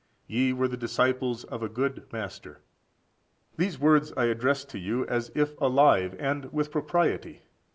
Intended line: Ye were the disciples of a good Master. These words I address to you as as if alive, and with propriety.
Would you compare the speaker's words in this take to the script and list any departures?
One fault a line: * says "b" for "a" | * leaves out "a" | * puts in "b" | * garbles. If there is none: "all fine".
* leaves out "as"